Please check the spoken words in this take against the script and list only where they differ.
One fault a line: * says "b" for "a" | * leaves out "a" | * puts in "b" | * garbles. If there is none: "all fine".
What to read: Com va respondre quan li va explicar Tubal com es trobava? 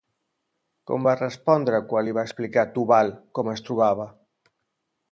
all fine